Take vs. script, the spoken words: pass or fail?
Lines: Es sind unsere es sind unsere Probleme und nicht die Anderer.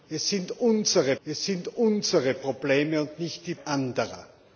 pass